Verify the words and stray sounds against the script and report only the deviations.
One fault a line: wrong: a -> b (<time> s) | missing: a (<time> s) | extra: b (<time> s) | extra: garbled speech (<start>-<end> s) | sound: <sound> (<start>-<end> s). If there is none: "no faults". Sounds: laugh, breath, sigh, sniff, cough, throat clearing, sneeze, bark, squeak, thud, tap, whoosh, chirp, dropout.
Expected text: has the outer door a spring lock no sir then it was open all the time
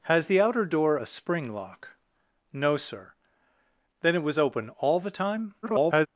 extra: garbled speech (5.6-6.1 s)